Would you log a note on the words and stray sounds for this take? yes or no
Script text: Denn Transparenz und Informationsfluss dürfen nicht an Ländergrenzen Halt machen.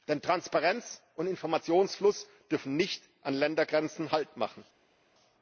no